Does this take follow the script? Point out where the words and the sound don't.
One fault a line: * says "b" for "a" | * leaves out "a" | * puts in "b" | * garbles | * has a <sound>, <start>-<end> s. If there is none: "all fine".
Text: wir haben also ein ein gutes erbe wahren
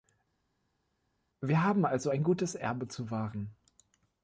* leaves out "ein"
* puts in "zu"